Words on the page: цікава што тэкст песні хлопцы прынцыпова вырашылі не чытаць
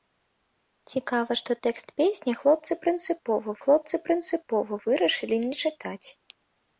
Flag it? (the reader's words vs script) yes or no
yes